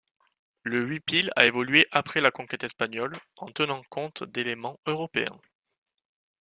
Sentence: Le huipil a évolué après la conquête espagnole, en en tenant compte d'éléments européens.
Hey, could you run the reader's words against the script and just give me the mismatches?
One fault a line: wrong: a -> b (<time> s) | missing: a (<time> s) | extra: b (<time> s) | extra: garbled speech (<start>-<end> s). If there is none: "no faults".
missing: en (3.5 s)